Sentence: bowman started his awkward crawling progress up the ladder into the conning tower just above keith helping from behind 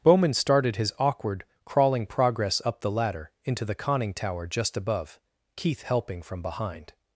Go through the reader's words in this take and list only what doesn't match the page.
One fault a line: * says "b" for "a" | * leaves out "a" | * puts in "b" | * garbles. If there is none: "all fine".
all fine